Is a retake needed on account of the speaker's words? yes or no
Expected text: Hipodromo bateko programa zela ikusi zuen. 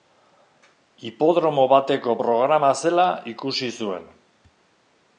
no